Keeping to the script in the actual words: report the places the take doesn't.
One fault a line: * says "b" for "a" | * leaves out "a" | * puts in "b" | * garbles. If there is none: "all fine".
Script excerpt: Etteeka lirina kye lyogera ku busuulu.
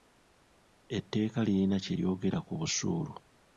all fine